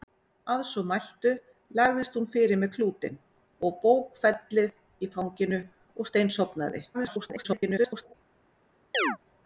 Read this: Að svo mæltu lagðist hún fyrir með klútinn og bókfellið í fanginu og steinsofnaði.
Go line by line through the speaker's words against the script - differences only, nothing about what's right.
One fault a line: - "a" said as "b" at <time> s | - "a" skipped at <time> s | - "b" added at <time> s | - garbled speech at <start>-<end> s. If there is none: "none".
- garbled speech at 6.9-8.1 s